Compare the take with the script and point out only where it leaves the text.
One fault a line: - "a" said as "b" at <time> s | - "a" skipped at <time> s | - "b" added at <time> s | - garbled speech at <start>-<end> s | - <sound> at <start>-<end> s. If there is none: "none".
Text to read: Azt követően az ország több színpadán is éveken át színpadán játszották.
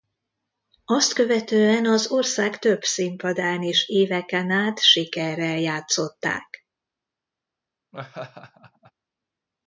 - "színpadán" said as "sikerrel" at 4.8 s
- laugh at 7.9-8.9 s